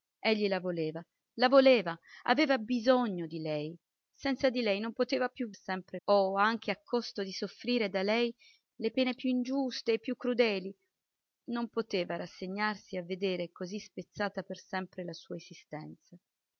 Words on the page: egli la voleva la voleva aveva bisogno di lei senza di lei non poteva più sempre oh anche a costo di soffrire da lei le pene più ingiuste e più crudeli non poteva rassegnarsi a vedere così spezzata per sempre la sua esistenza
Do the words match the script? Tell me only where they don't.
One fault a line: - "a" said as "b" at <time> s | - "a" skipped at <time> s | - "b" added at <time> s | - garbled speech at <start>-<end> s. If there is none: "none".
none